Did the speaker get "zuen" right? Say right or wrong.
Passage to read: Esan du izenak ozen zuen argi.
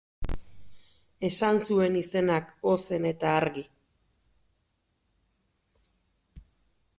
wrong